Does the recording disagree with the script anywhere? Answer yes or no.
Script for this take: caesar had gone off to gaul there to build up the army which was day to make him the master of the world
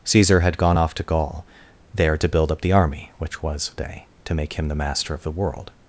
no